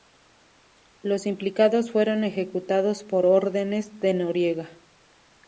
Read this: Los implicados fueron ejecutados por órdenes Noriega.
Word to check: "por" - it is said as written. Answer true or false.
true